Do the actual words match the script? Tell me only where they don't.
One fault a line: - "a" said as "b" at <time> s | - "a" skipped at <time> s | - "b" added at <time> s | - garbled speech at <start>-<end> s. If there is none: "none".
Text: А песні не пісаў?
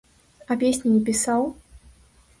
none